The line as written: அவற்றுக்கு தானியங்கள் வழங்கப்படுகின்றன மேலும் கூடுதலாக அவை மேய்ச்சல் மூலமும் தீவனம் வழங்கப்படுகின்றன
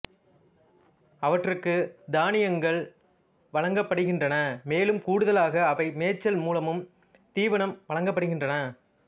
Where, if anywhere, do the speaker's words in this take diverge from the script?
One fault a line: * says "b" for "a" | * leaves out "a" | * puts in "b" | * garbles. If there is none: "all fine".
all fine